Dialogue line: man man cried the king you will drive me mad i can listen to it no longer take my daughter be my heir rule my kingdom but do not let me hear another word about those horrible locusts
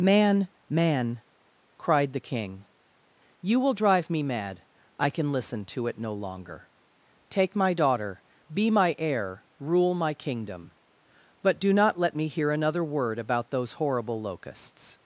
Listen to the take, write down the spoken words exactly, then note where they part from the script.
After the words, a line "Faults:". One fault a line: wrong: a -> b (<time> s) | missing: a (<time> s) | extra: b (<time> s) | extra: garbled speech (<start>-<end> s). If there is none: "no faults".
man man cried the king you will drive me mad i can listen to it no longer take my daughter be my heir rule my kingdom but do not let me hear another word about those horrible locusts
Faults:
no faults